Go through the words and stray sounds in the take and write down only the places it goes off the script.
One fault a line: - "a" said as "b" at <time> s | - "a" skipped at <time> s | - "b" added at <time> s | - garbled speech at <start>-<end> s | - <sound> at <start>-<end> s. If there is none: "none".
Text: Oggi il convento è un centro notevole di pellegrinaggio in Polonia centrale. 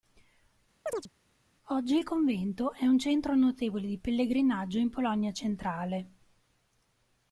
- chirp at 0.9-1.1 s